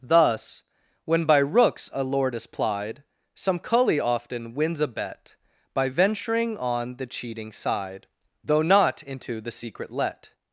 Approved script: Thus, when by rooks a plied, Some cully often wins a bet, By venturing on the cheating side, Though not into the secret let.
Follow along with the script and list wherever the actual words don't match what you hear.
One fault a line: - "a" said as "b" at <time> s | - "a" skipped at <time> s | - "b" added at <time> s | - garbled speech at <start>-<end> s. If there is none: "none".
- "lord is" added at 2.0 s